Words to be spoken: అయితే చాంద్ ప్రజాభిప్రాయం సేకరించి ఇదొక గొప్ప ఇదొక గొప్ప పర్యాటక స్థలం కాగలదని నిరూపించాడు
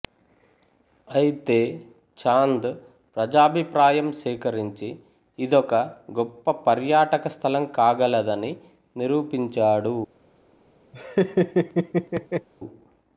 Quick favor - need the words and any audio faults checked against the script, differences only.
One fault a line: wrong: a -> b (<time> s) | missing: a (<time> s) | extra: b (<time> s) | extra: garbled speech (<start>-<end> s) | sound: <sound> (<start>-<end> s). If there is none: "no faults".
missing: ఇదొక గొప్ప (6.5 s)
sound: laugh (10.9-12.5 s)